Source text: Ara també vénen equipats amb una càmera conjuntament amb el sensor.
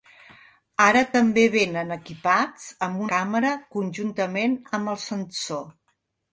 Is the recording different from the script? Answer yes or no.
yes